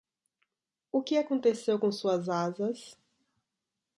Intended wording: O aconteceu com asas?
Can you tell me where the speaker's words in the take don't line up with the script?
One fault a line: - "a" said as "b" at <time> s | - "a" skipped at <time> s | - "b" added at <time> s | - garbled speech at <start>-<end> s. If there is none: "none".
- "que" added at 1.0 s
- "suas" added at 1.9 s